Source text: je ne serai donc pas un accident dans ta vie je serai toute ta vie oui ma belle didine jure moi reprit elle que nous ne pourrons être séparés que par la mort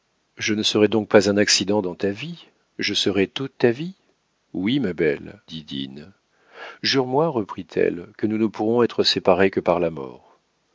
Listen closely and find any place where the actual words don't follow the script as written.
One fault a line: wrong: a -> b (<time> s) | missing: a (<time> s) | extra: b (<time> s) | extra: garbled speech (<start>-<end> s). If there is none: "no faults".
no faults